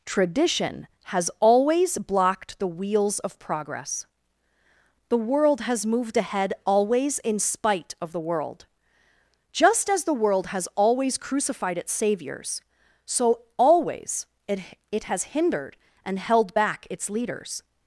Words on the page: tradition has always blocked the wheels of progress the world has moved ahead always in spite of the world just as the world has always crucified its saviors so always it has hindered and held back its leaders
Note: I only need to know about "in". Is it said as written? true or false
true